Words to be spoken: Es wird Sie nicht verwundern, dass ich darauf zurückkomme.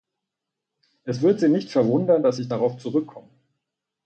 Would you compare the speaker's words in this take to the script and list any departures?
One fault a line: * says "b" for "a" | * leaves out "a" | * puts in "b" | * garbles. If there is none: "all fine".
all fine